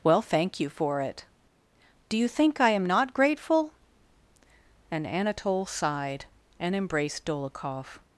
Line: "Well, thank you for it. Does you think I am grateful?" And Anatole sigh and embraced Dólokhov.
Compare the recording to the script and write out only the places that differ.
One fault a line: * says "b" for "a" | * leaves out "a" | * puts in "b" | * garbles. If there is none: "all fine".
* says "Do" for "Does"
* puts in "not"
* says "sighed" for "sigh"